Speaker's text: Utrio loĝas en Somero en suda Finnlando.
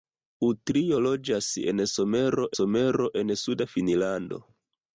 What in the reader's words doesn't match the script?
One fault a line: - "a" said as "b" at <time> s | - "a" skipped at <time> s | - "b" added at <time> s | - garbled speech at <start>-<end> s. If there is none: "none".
- "Somero" added at 2.6 s